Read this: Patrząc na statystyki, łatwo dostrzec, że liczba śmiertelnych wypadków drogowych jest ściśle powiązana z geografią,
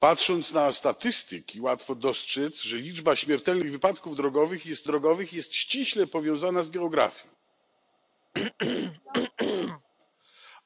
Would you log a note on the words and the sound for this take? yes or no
yes